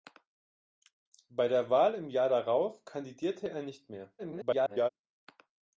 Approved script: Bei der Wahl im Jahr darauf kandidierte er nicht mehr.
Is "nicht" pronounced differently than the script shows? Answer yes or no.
no